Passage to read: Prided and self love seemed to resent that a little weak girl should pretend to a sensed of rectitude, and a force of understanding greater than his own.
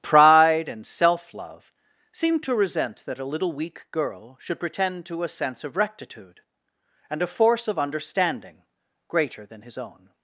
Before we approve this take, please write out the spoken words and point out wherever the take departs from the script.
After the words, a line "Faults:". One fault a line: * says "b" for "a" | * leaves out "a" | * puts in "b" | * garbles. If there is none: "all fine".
Pride and self love seemed to resent that a little weak girl should pretend to a sense of rectitude, and a force of understanding greater than his own.
Faults:
* says "Pride" for "Prided"
* says "sense" for "sensed"